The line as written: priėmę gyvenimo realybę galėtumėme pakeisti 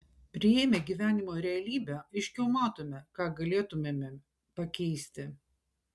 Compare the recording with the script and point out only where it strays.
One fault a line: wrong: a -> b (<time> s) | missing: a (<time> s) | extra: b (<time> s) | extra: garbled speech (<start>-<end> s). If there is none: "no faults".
extra: aiškiau matome ką (2.0 s)